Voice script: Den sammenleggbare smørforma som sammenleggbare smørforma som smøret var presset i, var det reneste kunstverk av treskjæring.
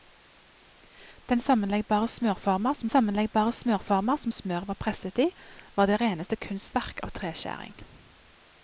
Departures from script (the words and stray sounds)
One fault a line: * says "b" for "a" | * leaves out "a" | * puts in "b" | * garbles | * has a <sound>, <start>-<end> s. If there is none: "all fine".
all fine